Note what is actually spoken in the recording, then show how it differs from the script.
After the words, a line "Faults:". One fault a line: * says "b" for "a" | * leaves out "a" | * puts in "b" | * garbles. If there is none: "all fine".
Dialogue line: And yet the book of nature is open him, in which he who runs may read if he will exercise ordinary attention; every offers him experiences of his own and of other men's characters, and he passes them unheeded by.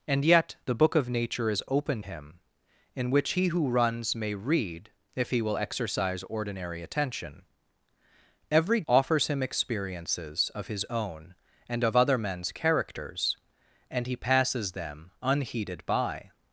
And yet the book of nature is open him, in which he who runs may read if he will exercise ordinary attention; every offers him experiences of his own and of other men's characters, and he passes them unheeded by.
Faults:
all fine